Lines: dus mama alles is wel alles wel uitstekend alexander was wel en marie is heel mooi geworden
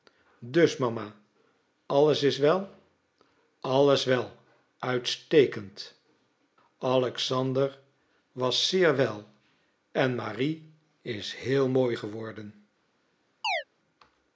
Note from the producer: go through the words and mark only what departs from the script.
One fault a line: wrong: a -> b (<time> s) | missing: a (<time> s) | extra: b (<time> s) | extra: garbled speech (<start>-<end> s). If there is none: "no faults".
extra: zeer (8.7 s)